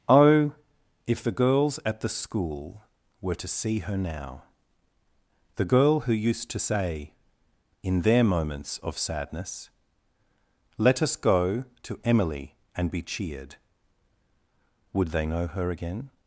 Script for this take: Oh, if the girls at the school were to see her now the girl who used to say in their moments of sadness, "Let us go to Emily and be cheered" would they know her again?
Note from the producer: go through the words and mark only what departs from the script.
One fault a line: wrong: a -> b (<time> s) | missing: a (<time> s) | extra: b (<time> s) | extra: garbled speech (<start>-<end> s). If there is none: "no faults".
no faults